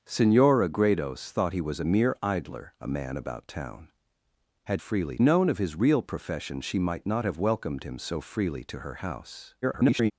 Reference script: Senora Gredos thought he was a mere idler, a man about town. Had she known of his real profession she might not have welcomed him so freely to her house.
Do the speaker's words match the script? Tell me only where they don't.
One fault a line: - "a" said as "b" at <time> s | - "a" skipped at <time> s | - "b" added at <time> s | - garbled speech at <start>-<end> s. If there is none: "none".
- "she" said as "freely" at 4.8 s
- garbled speech at 9.6-10.1 s